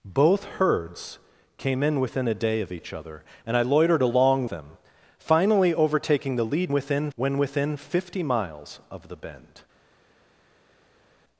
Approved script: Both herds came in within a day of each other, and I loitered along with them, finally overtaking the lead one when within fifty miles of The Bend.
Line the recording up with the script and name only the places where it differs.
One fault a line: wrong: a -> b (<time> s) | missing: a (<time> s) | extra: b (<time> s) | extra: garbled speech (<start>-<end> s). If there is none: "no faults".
missing: with (4.5 s)
wrong: one -> within (6.7 s)